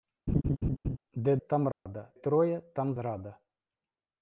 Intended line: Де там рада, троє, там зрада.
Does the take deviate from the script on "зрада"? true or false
false